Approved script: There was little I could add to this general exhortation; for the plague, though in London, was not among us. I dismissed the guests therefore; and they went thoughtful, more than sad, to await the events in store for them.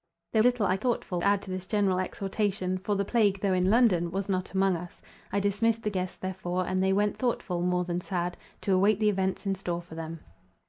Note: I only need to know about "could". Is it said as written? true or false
false